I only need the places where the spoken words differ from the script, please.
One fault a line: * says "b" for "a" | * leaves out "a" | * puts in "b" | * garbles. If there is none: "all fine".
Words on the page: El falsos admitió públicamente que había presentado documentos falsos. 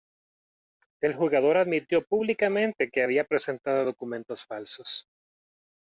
* says "jugador" for "falsos"